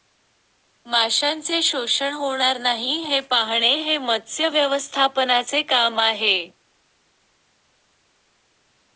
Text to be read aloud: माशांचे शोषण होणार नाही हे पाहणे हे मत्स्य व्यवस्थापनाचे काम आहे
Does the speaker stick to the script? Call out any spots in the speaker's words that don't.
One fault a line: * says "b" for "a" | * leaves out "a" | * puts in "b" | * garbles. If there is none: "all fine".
all fine